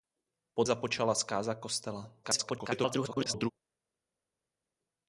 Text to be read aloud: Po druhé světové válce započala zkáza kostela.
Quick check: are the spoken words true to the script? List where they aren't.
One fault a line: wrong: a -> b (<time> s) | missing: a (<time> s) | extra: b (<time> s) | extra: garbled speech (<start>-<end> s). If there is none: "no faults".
missing: druhé světové válce (0.6 s)
extra: garbled speech (2.2-3.5 s)